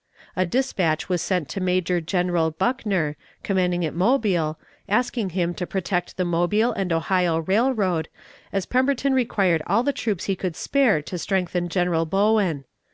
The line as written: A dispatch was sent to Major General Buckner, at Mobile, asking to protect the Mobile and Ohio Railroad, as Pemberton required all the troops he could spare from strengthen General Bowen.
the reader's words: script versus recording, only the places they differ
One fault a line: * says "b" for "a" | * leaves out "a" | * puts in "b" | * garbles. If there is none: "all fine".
* puts in "commanding"
* puts in "him"
* says "to" for "from"